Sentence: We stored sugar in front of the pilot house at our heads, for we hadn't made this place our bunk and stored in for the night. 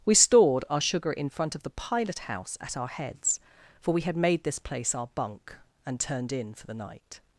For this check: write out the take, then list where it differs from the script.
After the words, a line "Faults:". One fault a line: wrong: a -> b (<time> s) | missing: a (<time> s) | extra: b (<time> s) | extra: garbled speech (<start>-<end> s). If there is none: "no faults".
We stored our sugar in front of the pilot house at our heads, for we had made this place our bunk and turned in for the night.
Faults:
extra: our (0.7 s)
wrong: hadn't -> had (4.0 s)
wrong: stored -> turned (6.0 s)